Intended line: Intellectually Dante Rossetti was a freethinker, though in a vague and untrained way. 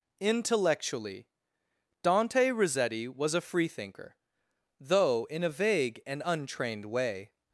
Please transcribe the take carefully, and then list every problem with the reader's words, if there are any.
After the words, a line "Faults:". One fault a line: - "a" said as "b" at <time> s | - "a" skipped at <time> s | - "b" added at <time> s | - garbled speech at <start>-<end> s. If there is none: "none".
Intellectually Dante Rossetti was a freethinker, though in a vague and untrained way.
Faults:
none